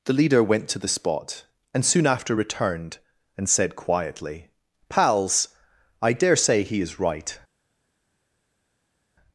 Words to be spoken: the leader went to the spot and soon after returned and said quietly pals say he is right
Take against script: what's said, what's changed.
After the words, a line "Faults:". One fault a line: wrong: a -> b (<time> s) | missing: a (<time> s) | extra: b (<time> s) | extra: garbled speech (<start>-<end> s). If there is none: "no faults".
the leader went to the spot and soon after returned and said quietly pals i dare say he is right
Faults:
extra: i dare (6.0 s)